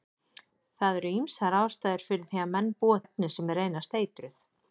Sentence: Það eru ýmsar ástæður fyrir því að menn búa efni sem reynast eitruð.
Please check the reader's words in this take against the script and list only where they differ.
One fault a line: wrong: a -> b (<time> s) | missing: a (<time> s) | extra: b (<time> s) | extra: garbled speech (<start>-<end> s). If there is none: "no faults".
no faults